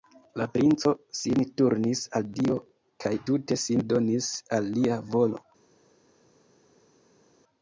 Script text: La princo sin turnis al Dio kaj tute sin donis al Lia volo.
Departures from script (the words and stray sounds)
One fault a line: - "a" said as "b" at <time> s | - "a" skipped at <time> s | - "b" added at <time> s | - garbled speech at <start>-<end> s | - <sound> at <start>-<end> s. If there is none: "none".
none